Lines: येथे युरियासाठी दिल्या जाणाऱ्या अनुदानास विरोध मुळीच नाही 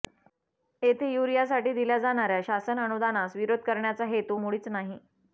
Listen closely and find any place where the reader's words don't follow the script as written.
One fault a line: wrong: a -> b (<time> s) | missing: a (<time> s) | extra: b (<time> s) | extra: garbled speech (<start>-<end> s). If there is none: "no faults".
extra: शासन (2.4 s)
extra: करण्याचा हेतू (3.6 s)